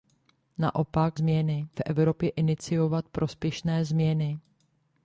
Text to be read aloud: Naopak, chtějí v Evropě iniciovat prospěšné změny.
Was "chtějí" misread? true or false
true